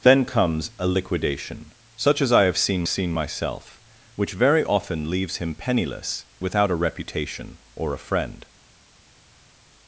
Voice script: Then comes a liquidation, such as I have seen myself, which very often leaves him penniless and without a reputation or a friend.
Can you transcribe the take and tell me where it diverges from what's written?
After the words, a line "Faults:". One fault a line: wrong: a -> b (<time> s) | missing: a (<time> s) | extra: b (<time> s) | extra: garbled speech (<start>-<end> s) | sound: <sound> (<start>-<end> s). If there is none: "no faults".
Then comes a liquidation, such as I have seen seen myself, which very often leaves him penniless without a reputation or a friend.
Faults:
extra: seen (2.9 s)
missing: and (6.3 s)